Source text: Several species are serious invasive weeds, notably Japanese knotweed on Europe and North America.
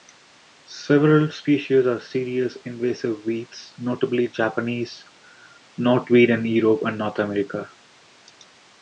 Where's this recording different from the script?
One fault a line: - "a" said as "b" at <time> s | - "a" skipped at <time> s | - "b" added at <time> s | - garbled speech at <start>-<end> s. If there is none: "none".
- "on" said as "in" at 6.3 s